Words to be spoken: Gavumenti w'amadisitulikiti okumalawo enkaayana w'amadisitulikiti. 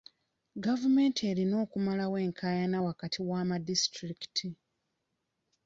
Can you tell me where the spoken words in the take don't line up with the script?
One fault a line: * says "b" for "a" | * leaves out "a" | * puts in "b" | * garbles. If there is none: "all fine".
* says "erina" for "w'amadisitulikiti"
* puts in "wakati"